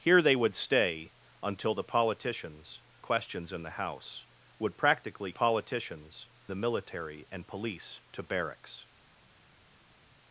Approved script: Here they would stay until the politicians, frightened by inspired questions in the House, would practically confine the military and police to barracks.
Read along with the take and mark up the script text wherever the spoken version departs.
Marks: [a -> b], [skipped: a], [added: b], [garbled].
Here they would stay until the politicians, [skipped: frightened by inspired] questions in the House, would practically [confine -> politicians] the military and police to barracks.